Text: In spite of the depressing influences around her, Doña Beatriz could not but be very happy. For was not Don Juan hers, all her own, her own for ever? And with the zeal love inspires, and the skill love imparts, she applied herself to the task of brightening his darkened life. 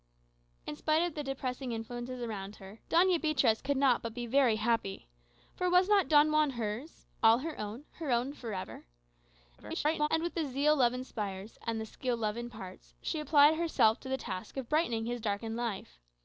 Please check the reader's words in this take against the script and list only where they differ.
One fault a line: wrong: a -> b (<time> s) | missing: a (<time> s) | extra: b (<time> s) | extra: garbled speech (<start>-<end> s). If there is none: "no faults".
extra: garbled speech (9.6-10.1 s)